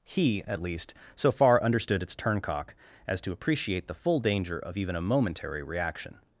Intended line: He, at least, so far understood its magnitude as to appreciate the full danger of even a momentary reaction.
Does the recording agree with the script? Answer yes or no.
no